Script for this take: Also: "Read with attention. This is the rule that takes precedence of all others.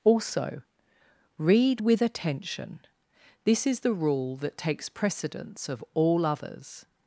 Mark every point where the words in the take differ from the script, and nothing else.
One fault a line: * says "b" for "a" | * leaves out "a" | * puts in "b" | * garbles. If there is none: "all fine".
all fine